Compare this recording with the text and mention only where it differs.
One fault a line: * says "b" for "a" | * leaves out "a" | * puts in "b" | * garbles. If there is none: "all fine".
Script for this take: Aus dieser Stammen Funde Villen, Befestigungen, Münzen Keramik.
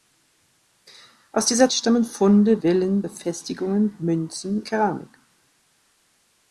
all fine